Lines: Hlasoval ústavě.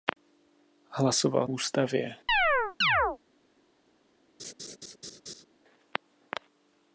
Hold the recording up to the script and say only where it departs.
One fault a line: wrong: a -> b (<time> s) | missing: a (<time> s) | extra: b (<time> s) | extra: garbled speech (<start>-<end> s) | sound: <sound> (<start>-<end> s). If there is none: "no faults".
sound: chirp (2.3-3.2 s)
sound: laugh (4.4-5.4 s)